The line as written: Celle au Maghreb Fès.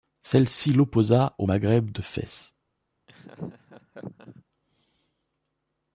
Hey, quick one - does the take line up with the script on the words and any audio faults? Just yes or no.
no